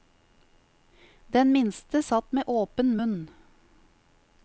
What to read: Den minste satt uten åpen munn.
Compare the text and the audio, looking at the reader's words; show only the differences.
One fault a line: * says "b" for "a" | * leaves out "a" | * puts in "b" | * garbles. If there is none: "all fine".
* says "med" for "uten"